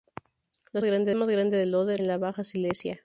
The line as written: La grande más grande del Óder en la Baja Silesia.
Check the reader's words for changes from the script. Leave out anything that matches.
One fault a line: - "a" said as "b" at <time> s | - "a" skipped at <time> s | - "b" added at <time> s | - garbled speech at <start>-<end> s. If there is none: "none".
none